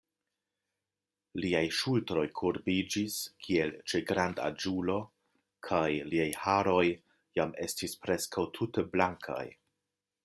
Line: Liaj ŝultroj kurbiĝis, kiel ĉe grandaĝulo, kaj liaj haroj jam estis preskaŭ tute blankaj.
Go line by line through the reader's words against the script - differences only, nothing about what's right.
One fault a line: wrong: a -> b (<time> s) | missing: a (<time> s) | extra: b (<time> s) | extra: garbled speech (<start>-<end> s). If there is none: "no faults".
no faults